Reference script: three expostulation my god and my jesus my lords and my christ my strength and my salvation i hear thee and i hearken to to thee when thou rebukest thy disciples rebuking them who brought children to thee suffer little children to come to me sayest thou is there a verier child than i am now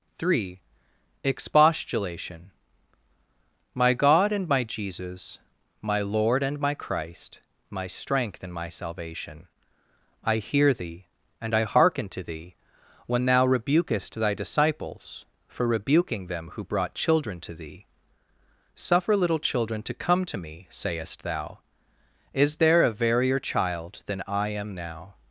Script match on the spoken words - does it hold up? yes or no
no